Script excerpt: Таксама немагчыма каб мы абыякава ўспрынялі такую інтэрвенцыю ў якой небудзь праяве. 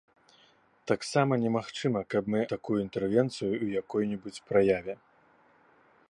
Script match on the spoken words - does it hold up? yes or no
no